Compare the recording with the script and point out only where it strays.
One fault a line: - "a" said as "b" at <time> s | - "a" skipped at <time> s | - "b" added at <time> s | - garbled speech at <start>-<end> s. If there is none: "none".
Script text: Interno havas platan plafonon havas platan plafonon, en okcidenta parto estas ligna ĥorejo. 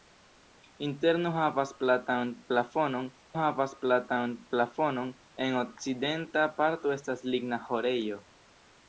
none